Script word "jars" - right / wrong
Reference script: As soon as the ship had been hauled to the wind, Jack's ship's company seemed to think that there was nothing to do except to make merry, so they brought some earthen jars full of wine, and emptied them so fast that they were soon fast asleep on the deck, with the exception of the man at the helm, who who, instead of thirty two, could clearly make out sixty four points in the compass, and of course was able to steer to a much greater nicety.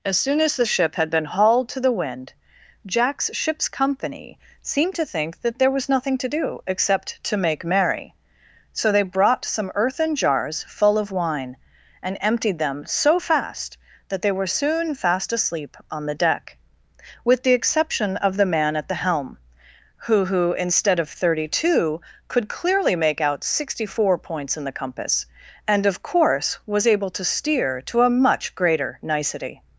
right